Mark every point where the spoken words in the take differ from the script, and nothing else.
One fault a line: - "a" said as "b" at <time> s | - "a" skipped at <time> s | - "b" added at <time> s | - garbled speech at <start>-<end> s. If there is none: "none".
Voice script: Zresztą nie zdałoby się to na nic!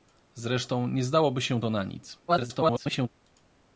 - garbled speech at 2.3-3.1 s